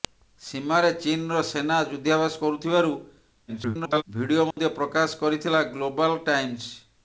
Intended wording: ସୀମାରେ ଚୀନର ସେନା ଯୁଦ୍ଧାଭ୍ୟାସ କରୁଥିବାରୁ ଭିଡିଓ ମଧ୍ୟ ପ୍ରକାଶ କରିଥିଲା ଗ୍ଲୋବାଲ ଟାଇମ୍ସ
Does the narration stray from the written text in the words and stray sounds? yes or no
yes